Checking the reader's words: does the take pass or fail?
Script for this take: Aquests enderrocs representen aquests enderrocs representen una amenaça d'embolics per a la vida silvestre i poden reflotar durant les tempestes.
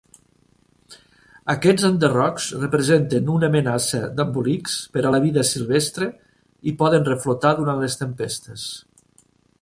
fail